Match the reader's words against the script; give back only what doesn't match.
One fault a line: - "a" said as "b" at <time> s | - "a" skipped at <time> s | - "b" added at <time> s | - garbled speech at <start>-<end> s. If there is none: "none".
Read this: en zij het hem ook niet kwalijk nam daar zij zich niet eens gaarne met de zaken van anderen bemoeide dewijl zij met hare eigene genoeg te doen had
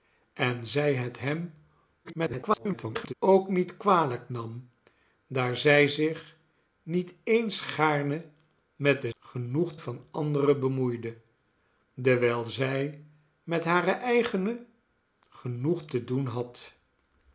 - garbled speech at 2.0-3.1 s
- "zaken" said as "genoeg" at 9.2 s